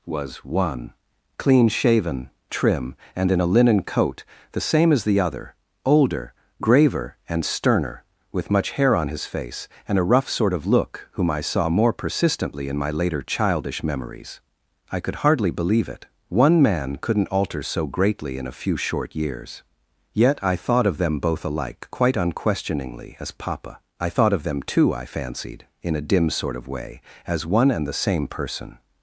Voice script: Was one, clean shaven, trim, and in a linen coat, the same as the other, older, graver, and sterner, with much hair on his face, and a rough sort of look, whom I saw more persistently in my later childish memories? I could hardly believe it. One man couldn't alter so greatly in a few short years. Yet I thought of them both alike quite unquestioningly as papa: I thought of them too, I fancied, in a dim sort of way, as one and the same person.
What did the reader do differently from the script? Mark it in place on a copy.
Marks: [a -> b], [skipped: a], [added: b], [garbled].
Was one, clean shaven, trim, and in a linen coat, the same as the other, older, graver, and sterner, with much hair on his face, and a rough sort of look, whom I saw more persistently in my later childish memories? I could hardly believe it. One man couldn't alter so greatly in a few short years. Yet I thought of them both alike quite unquestioningly as papa: I thought of them too, I fancied, in a dim sort of way, as one and the same person.